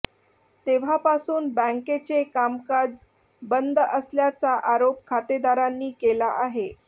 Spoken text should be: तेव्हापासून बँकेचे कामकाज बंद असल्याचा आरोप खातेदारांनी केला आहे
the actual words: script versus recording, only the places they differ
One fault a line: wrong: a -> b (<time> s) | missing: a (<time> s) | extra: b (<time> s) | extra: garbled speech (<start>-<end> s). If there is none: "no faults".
no faults